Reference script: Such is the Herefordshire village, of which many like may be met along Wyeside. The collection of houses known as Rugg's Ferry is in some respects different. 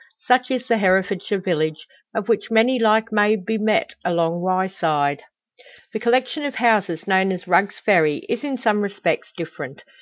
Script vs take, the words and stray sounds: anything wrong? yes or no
no